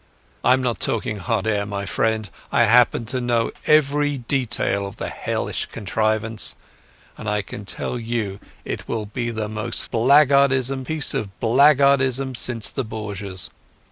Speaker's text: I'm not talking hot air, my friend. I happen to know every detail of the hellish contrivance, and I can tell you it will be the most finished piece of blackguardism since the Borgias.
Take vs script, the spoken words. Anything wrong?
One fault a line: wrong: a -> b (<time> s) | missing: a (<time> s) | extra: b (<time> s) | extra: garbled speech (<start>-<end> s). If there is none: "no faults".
wrong: finished -> blackguardism (9.9 s)